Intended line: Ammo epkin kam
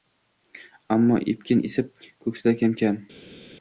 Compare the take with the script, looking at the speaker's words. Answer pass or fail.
fail